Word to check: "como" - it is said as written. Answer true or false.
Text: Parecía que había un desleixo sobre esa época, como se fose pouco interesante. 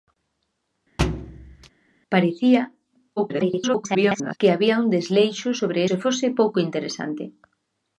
false